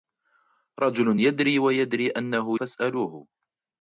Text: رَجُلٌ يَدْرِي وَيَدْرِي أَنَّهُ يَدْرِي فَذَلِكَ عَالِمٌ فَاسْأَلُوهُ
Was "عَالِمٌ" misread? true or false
true